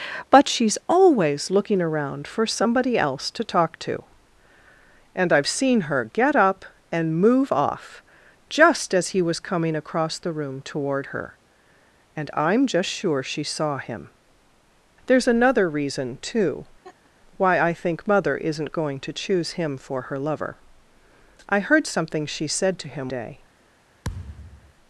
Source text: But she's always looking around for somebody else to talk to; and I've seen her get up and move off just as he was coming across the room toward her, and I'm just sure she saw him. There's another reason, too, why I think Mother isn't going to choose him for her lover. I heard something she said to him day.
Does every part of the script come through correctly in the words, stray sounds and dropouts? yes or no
no